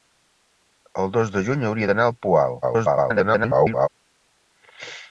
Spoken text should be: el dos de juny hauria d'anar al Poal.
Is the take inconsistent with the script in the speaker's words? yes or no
yes